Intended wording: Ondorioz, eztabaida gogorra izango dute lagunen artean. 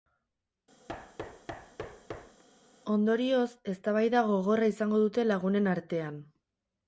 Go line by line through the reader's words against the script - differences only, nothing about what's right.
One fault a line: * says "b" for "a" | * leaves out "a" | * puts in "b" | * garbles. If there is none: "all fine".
all fine